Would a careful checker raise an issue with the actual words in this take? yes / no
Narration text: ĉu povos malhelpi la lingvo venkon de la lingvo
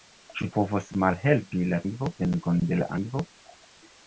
no